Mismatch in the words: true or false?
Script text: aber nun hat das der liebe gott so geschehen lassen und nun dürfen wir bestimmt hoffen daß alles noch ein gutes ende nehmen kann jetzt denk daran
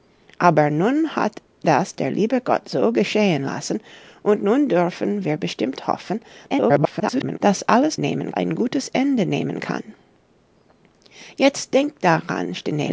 true